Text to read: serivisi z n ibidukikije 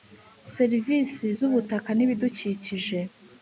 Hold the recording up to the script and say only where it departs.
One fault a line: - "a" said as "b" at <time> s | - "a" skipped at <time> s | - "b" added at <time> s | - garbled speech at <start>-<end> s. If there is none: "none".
- "ubutaka" added at 1.5 s